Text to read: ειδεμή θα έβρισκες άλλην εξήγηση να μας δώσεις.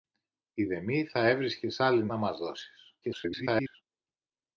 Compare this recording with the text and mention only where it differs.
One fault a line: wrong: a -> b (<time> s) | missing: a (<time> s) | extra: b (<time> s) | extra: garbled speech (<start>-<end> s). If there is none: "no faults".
missing: εξήγηση (2.1 s)
extra: garbled speech (3.0-3.8 s)